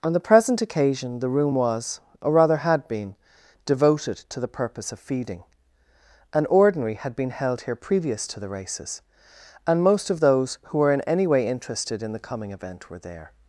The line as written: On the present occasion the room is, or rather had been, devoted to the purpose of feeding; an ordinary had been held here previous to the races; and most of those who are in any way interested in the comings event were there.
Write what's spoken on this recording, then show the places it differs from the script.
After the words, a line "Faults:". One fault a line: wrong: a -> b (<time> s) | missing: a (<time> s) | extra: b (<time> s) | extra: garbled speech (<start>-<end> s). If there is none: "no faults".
On the present occasion the room was, or rather had been, devoted to the purpose of feeding; an ordinary had been held here previous to the races; and most of those who were in any way interested in the coming event were there.
Faults:
wrong: is -> was (1.5 s)
wrong: are -> were (10.8 s)
wrong: comings -> coming (12.3 s)